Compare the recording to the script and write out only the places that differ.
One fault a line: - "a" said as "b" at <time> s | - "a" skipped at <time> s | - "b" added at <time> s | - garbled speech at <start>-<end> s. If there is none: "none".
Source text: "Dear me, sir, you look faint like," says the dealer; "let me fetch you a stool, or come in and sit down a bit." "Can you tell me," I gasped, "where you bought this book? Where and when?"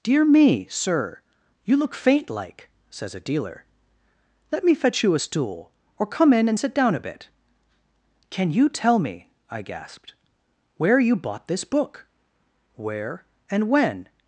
- "the" said as "a" at 3.1 s